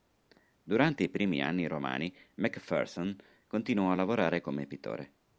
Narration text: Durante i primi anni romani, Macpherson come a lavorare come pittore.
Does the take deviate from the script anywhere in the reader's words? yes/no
yes